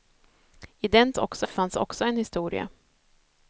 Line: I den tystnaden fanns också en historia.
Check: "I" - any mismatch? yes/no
no